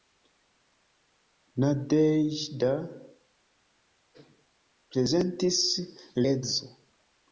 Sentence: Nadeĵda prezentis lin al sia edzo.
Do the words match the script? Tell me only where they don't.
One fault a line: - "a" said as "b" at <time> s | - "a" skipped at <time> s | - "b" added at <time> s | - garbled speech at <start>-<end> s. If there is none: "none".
- "lin al sia" skipped at 5.6 s